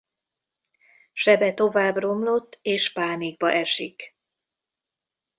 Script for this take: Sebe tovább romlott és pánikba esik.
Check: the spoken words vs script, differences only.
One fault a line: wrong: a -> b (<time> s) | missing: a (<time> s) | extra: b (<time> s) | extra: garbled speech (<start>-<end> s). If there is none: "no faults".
no faults